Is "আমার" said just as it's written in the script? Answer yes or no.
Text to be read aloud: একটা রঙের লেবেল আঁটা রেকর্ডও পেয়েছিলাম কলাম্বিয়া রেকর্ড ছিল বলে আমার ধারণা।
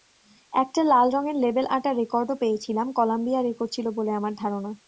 yes